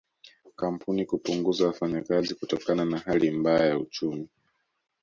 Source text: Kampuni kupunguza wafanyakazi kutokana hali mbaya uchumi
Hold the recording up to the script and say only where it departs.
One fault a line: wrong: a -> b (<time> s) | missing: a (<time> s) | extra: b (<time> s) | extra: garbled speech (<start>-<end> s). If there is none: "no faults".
extra: na (2.9 s)
extra: ya (3.7 s)